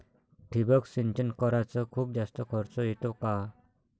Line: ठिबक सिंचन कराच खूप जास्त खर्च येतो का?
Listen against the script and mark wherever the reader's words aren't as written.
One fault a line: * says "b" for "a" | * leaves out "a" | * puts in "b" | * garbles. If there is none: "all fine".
all fine